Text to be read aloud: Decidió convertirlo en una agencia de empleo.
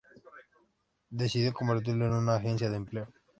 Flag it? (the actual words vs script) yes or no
no